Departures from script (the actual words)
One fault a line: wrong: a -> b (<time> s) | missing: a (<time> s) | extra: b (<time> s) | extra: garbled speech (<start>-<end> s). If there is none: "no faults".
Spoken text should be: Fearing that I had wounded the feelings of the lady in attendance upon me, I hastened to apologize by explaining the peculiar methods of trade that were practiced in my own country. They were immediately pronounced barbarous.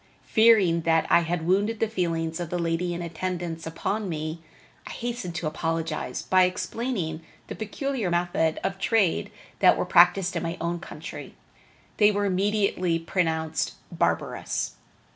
no faults